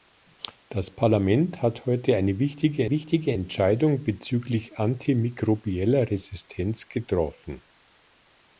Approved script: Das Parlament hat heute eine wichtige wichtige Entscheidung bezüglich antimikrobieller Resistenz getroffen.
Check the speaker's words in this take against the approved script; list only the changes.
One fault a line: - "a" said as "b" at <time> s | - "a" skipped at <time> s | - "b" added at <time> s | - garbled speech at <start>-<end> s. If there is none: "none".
none